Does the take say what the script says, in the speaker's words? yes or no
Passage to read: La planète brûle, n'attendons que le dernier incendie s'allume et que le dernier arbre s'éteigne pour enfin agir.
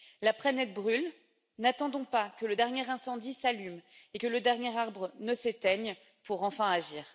no